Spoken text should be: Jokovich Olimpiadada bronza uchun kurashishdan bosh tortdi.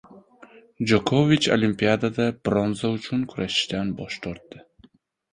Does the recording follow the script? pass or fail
pass